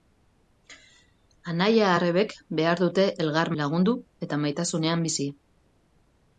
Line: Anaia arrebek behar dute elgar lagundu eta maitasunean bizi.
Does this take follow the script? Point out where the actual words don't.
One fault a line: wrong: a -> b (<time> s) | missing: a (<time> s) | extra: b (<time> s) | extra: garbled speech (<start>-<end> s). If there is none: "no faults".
no faults